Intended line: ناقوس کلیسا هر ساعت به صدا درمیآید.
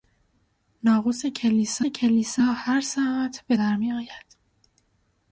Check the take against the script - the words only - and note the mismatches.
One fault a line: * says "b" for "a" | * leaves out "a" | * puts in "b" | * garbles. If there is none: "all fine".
* puts in "کلیسا"
* leaves out "صدا"